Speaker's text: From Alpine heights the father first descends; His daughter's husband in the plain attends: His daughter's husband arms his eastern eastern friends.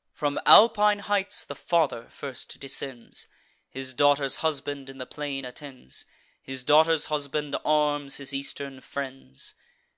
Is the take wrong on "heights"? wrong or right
right